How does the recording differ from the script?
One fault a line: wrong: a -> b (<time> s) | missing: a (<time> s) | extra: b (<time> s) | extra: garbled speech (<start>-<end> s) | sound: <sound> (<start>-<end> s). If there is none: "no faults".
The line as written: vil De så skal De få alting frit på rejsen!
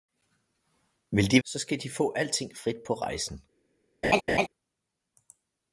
sound: laugh (4.0-4.5 s)